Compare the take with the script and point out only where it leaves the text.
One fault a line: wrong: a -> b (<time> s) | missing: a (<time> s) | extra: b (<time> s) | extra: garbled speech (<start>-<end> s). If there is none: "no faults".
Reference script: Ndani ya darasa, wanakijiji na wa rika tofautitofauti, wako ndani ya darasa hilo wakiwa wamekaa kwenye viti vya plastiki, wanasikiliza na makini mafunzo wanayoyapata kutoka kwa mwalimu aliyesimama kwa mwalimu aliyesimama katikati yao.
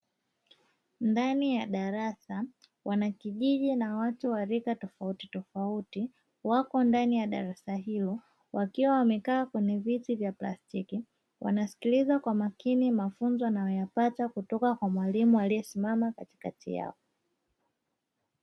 extra: watu (4.0 s)
wrong: na -> kwa (12.2 s)
missing: kwa mwalimu aliyesimama (16.1 s)